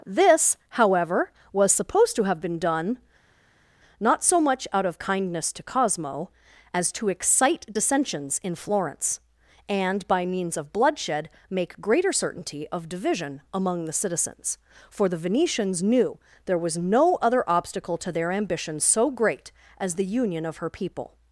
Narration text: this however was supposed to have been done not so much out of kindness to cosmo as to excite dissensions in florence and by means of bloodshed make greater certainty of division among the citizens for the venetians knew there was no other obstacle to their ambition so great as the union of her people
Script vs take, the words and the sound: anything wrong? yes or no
no